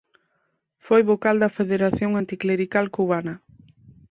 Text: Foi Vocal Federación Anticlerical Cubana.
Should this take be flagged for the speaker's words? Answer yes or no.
yes